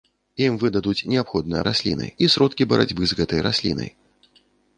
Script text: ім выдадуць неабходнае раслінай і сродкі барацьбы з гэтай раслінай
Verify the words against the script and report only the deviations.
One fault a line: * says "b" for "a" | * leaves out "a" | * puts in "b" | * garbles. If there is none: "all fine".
all fine